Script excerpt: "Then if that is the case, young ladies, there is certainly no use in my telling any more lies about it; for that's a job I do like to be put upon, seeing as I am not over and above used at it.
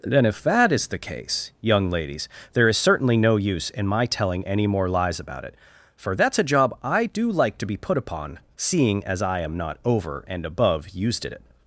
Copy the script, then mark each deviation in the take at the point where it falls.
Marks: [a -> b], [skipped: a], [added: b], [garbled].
"Then if that is the case, young ladies, there is certainly no use in my telling any more lies about it; for that's a job I do like to be put upon, seeing as I am not over and above used at it.